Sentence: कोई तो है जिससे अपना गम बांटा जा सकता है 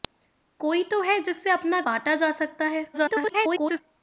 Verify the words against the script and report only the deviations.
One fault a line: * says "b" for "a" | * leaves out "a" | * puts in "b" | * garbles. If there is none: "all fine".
* leaves out "गम"
* garbles